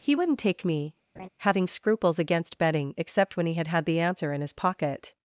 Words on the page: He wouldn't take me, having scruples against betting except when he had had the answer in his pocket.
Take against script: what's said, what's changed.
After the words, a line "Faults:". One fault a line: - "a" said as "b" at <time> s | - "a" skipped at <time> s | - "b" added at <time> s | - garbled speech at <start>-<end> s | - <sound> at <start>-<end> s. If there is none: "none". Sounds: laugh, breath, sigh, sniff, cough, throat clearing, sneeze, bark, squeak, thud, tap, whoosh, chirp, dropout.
He wouldn't take me, having scruples against betting except when he had had the answer in his pocket.
Faults:
- laugh at 1.2-1.3 s